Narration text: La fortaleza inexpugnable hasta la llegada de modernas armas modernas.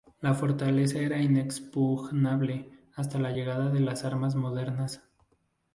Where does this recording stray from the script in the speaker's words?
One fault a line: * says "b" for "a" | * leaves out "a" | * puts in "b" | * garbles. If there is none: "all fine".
* puts in "era"
* says "las" for "modernas"